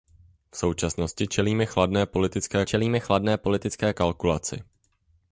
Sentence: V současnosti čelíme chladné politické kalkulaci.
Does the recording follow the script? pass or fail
fail